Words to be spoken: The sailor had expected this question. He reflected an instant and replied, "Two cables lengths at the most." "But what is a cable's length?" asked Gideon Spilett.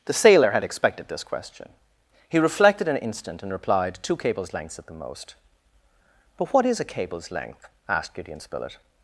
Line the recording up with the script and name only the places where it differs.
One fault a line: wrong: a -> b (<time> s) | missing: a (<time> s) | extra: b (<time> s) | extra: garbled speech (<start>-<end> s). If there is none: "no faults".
no faults